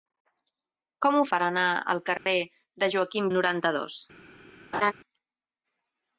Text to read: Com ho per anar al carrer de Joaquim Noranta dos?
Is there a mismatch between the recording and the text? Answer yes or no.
no